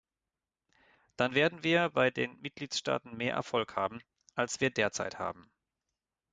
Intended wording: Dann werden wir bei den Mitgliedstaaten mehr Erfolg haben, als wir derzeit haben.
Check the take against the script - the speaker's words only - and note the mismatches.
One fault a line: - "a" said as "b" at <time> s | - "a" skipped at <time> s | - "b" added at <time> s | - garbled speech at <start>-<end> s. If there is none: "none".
none